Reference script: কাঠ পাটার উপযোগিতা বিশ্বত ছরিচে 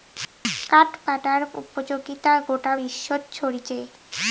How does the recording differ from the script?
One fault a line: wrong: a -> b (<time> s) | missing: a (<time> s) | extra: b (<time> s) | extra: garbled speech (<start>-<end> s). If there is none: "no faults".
extra: গোটা (2.5 s)